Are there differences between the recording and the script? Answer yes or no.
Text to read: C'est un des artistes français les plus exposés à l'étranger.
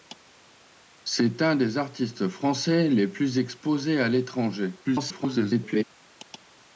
yes